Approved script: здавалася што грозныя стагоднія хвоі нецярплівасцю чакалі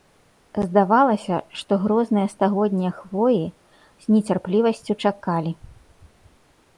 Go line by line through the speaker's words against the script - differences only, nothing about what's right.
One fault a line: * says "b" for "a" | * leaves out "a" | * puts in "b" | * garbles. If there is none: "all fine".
* puts in "з"